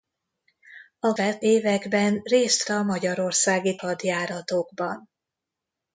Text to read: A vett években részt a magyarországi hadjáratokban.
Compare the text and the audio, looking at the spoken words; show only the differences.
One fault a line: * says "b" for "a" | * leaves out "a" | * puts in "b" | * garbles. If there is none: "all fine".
all fine